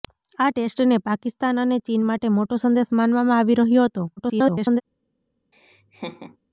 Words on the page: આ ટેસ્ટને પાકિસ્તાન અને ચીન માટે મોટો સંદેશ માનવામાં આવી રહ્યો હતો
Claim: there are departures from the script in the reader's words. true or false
true